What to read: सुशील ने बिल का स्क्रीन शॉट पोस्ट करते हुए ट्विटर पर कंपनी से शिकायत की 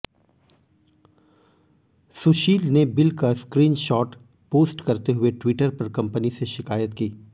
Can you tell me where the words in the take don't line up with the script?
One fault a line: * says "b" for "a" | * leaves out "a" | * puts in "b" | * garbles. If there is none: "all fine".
all fine